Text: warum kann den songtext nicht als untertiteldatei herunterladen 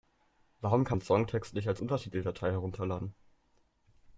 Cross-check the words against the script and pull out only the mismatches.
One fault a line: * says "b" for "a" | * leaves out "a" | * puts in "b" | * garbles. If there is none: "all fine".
all fine